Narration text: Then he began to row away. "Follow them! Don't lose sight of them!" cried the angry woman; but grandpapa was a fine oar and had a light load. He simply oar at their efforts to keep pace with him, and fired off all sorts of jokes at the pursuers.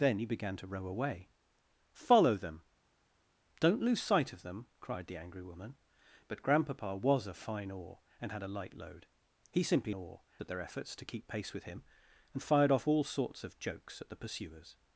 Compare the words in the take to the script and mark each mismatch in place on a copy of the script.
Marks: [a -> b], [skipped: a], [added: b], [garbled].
Then he began to row away. "Follow them! Don't lose sight of them!" cried the angry woman; but grandpapa was a fine oar and had a light load. He simply oar at their efforts to keep pace with him, and fired off all sorts of jokes at the pursuers.